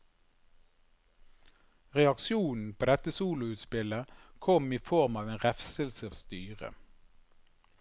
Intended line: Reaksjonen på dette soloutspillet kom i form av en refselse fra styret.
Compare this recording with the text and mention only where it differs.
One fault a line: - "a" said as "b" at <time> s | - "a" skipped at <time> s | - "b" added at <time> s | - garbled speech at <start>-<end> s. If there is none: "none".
- "fra" skipped at 6.1 s